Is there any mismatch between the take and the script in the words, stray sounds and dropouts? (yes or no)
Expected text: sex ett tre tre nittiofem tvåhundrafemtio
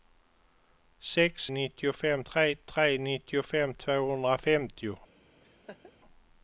yes